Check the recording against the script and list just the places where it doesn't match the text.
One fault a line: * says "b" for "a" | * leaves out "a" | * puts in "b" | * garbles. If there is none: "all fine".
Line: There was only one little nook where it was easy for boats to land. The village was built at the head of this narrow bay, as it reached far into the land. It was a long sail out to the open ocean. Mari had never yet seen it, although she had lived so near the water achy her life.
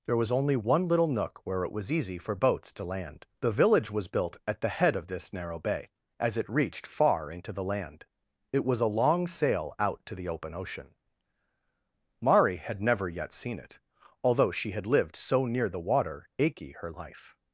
all fine